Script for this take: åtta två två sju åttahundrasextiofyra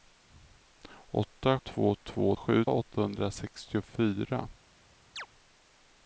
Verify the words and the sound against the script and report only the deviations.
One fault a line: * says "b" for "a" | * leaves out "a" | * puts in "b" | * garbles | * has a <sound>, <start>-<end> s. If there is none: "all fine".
* has a chirp, 5.2-5.3 s